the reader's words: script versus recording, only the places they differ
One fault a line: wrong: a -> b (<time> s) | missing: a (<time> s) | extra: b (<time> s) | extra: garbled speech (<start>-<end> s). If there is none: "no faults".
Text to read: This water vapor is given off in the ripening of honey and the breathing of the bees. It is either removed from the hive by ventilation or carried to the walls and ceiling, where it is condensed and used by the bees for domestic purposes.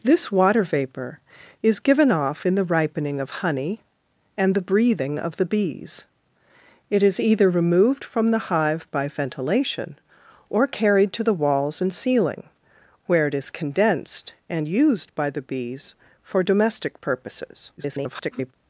extra: garbled speech (17.8-18.5 s)